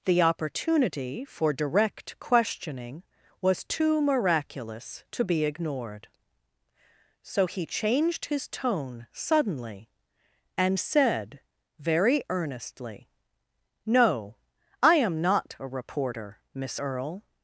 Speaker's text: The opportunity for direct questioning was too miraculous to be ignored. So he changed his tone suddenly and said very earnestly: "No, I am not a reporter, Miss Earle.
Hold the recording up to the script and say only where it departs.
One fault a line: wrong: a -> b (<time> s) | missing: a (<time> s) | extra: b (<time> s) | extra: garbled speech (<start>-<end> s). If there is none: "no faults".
no faults